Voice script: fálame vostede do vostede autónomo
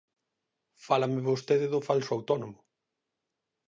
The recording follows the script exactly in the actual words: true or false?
false